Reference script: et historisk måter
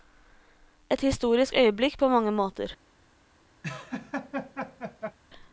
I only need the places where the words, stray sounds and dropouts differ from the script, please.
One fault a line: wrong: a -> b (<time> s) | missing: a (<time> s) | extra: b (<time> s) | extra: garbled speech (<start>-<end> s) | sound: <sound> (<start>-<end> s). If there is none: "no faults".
extra: øyeblikk på mange (1.6 s)
sound: laugh (3.6-5.2 s)